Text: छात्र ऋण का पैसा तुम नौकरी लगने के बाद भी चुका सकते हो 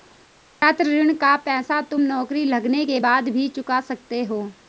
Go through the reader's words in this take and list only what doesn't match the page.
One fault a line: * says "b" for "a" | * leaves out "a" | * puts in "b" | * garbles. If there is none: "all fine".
all fine